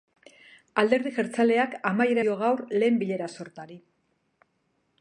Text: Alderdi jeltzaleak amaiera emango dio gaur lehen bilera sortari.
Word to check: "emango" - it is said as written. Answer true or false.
false